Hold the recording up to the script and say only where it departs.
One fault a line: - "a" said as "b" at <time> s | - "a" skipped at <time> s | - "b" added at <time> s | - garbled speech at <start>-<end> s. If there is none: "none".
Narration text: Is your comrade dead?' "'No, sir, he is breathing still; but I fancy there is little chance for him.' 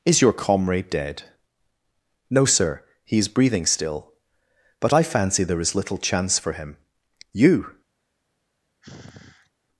- "You" added at 7.3 s